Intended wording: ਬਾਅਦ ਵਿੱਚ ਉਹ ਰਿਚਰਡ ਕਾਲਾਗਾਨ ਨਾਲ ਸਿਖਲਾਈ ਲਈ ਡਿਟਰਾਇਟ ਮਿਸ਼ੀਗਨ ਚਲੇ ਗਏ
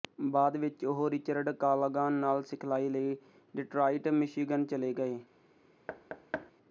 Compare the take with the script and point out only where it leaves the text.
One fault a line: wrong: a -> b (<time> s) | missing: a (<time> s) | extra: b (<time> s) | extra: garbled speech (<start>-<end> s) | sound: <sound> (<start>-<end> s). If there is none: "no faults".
sound: thud (5.9-6.5 s)